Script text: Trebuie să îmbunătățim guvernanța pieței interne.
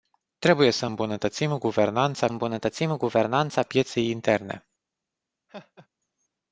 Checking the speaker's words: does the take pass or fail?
fail